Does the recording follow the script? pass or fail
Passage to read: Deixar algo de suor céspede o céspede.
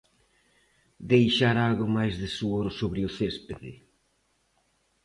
fail